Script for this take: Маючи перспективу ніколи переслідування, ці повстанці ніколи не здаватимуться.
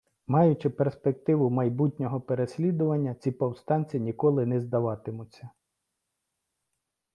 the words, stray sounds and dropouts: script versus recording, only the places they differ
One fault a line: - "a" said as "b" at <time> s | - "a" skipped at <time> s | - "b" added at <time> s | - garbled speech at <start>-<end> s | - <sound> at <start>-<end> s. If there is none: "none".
- "ніколи" said as "майбутнього" at 1.5 s